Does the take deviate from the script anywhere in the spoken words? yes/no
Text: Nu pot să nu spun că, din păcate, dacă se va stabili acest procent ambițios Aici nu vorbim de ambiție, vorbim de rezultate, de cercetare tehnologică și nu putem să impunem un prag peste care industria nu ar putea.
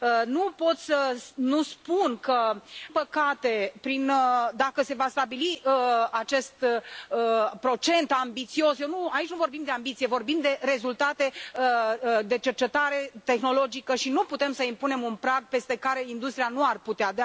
yes